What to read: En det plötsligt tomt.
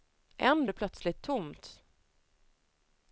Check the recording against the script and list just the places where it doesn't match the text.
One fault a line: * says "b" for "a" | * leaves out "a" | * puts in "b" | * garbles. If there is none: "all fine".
all fine